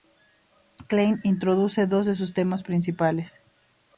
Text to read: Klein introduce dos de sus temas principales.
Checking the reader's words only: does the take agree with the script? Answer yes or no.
yes